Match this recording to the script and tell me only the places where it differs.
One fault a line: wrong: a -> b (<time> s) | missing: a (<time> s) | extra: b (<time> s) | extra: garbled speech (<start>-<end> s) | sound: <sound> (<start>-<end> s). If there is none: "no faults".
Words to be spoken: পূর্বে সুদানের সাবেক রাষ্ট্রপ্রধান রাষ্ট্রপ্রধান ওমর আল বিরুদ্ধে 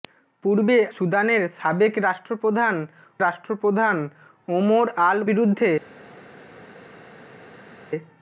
no faults